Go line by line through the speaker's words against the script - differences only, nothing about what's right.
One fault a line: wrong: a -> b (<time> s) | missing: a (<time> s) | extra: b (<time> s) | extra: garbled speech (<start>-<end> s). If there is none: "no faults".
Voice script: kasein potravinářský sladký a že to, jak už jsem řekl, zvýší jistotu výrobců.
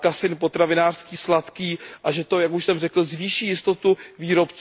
no faults